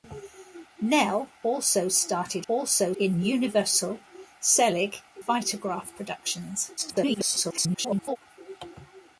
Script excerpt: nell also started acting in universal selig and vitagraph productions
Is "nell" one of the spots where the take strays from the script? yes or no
no